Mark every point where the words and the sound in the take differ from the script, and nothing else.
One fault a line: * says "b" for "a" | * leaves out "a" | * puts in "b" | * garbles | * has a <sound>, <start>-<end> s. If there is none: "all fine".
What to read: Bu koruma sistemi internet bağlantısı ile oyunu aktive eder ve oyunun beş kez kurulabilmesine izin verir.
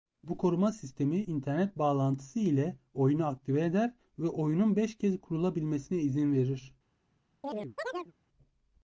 * has a chirp, 7.4-8.1 s